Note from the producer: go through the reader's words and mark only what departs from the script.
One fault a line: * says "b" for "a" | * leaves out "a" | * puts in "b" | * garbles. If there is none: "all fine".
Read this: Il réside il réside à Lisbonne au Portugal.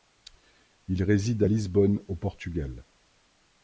* leaves out "il réside"